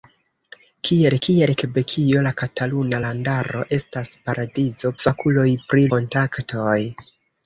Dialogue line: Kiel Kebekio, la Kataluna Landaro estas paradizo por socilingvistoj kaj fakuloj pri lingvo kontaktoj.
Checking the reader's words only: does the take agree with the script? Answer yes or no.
no